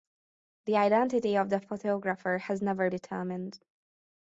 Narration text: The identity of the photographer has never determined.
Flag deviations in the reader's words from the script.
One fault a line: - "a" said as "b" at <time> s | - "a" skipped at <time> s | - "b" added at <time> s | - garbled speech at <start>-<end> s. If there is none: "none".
none